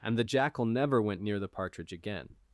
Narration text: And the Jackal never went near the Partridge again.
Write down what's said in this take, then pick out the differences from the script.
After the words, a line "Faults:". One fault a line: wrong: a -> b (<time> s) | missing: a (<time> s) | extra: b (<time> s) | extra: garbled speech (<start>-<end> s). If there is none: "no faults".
And the Jackal never went near the Partridge again.
Faults:
no faults